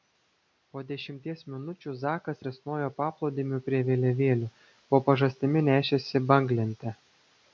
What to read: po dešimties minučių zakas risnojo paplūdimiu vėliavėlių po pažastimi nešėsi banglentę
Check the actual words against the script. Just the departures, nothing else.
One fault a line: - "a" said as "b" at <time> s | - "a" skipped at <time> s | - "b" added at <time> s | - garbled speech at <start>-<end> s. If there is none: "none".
- "prie" added at 3.7 s